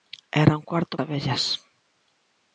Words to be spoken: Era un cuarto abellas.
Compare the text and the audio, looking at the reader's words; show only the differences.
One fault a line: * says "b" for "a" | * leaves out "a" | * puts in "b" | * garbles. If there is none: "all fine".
all fine